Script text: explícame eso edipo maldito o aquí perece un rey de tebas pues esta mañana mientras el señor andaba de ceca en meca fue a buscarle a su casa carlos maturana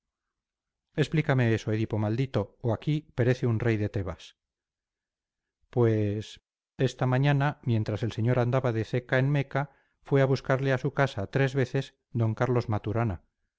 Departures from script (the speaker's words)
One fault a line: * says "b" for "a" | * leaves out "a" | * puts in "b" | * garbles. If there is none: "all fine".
* puts in "tres veces d"